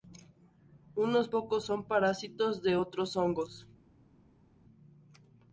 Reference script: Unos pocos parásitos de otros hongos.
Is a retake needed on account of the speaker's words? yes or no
yes